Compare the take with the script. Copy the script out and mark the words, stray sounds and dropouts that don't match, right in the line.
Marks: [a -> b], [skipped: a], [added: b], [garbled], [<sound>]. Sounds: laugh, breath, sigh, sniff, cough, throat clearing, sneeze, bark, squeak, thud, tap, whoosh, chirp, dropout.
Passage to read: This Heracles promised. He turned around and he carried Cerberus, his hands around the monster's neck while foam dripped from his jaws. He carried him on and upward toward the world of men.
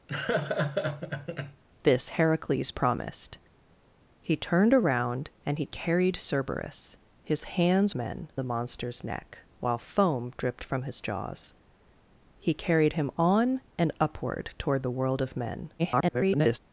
[laugh] This Heracles promised. He turned around and he carried Cerberus, his hands [around -> men] the monster's neck while foam dripped from his jaws. He carried him on and upward toward the world of men. [garbled]